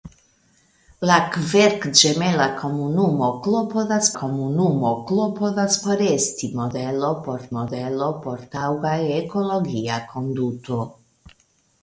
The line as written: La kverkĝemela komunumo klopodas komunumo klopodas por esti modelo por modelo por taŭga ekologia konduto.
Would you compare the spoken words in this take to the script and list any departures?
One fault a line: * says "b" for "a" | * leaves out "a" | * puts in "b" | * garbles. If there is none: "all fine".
all fine